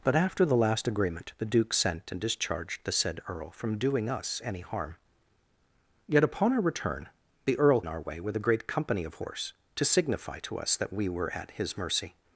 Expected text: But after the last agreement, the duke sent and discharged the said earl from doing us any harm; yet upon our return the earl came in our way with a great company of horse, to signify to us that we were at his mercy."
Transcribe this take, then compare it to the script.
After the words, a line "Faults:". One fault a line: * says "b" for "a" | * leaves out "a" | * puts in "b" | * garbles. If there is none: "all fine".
But after the last agreement, the duke sent and discharged the said earl from doing us any harm; yet upon our return the earl in our way with a great company of horse, to signify to us that we were at his mercy."
Faults:
* leaves out "came"